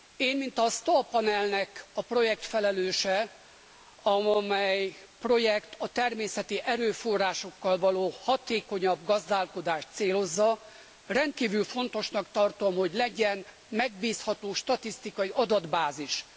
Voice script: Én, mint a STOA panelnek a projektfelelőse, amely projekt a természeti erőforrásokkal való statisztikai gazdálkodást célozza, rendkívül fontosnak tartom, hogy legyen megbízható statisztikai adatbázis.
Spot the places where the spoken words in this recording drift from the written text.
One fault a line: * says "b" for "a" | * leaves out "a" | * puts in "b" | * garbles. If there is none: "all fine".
* says "hatékonyabb" for "statisztikai"